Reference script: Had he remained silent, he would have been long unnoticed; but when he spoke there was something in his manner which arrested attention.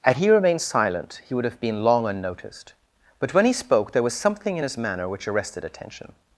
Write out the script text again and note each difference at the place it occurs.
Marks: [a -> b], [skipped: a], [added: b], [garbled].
Had he remained silent, he would have been long unnoticed; but when he spoke there was something in his manner which arrested attention.